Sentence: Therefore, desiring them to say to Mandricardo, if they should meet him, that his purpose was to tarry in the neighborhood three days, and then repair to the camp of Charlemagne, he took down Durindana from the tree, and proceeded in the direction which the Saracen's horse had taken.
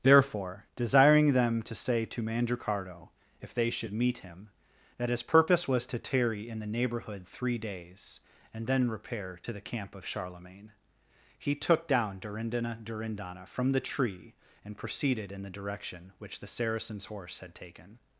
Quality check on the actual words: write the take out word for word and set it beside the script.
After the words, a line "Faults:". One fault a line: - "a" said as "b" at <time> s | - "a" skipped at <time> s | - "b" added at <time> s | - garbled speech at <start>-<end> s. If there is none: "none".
Therefore, desiring them to say to Mandricardo, if they should meet him, that his purpose was to tarry in the neighborhood three days, and then repair to the camp of Charlemagne, he took down Durindana Durindana from the tree, and proceeded in the direction which the Saracen's horse had taken.
Faults:
- "Durindana" added at 12.8 s